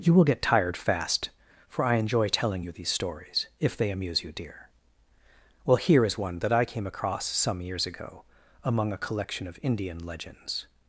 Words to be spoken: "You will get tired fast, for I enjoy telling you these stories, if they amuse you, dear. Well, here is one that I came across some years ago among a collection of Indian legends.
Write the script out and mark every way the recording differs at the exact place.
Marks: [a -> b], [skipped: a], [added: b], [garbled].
"You will get tired fast, for I enjoy telling you these stories, if they amuse you, dear. Well, here is one that I came across some years ago among a collection of Indian legends.